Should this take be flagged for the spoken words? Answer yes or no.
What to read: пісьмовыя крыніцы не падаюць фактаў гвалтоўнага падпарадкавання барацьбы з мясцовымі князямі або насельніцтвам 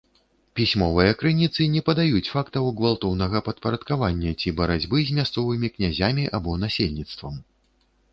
yes